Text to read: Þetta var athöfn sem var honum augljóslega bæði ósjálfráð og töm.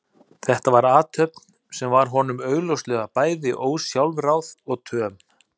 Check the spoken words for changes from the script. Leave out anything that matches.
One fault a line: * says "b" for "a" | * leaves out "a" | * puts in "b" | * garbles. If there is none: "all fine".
all fine